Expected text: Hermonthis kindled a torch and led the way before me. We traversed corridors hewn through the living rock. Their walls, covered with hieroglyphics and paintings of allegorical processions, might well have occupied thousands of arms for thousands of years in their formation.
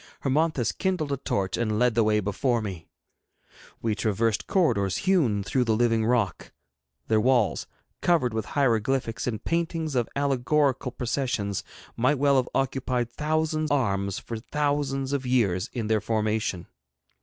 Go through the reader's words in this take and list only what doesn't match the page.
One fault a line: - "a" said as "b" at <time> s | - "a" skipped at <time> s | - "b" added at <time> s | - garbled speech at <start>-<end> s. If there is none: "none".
- "of" skipped at 13.7 s